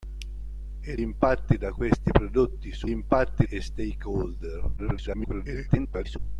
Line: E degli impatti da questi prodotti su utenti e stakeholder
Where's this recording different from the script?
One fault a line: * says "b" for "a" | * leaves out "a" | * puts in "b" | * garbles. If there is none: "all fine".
* leaves out "degli"
* says "impatti" for "utenti"
* garbles